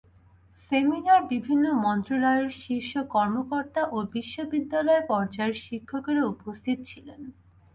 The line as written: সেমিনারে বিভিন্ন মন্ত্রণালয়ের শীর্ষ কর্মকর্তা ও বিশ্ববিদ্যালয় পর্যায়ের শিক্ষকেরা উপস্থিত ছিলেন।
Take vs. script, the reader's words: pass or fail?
pass